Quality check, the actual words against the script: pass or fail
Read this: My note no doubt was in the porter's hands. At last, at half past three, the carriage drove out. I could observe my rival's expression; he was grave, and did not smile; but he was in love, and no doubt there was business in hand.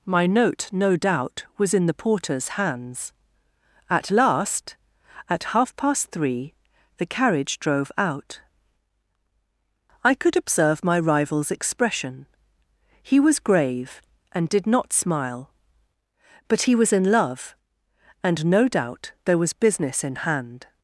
pass